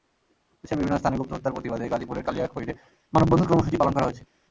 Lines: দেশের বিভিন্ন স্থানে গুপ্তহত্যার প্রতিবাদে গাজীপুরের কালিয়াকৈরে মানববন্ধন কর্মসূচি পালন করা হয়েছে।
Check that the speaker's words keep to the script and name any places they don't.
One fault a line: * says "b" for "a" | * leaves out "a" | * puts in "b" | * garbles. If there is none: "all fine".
all fine